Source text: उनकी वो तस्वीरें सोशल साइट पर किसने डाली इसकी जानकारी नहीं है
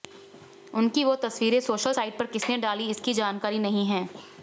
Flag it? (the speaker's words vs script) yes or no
no